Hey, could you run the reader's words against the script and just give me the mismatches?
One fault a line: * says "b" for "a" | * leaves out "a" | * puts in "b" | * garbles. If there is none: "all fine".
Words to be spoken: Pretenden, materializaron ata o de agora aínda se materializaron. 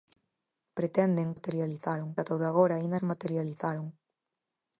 all fine